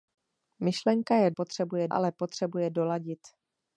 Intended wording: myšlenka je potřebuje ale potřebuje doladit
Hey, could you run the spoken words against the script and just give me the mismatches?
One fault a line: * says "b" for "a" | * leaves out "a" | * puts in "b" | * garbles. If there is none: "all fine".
all fine